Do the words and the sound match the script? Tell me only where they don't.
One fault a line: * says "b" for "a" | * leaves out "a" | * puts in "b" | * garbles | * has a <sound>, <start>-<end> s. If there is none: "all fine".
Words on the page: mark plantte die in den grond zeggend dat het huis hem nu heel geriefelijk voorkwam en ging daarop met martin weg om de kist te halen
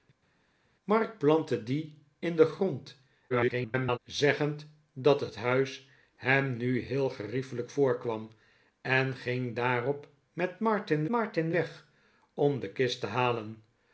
* garbles
* puts in "martin"